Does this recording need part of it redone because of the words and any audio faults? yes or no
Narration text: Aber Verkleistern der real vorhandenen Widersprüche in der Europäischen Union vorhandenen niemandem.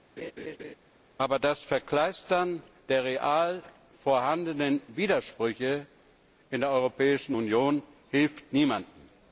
yes